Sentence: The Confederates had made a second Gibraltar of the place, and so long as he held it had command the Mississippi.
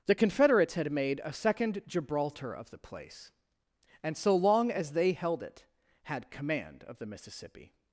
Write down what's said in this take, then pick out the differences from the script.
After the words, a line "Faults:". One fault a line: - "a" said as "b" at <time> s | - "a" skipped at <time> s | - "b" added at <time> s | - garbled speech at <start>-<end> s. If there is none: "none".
The Confederates had made a second Gibraltar of the place, and so long as they held it had command of the Mississippi.
Faults:
- "he" said as "they" at 4.9 s
- "of" added at 6.8 s